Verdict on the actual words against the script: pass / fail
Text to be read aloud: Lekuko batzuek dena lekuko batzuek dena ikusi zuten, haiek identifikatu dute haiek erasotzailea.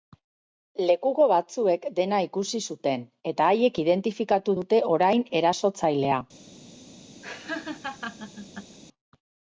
fail